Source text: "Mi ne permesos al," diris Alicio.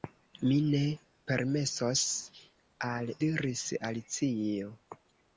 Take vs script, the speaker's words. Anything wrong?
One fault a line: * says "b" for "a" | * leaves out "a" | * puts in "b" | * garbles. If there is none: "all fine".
all fine